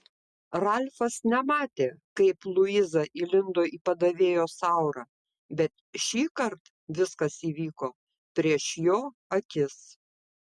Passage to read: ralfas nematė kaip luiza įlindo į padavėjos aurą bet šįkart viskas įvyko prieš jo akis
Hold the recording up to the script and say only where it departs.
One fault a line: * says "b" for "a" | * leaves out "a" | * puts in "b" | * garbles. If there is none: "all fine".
all fine